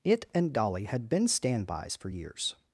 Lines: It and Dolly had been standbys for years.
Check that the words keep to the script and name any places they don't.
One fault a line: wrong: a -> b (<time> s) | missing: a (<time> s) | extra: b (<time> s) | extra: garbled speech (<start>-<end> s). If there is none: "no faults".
no faults